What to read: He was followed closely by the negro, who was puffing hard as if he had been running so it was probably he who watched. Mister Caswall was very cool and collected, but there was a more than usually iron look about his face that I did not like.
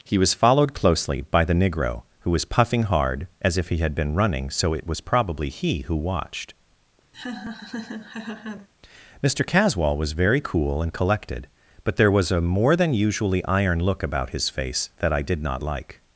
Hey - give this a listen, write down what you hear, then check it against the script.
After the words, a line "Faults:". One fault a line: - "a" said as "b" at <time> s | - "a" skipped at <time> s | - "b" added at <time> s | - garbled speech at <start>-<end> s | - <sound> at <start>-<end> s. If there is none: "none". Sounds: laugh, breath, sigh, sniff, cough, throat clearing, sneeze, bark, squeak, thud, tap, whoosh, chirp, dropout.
He was followed closely by the negro, who was puffing hard as if he had been running so it was probably he who watched. Mister Caswall was very cool and collected, but there was a more than usually iron look about his face that I did not like.
Faults:
- laugh at 7.1-8.7 s